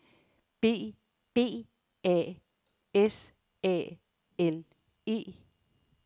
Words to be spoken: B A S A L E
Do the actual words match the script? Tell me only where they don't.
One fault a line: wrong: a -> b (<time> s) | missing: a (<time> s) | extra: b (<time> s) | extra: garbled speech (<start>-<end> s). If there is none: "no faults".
extra: b (1.3 s)